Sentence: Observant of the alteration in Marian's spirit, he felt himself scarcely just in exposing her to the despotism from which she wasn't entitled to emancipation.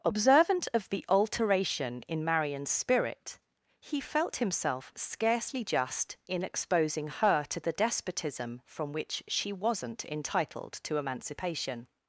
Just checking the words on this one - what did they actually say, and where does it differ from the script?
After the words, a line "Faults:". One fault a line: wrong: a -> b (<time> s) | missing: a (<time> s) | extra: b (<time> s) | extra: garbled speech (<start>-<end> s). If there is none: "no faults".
Observant of the alteration in Marian's spirit, he felt himself scarcely just in exposing her to the despotism from which she wasn't entitled to emancipation.
Faults:
no faults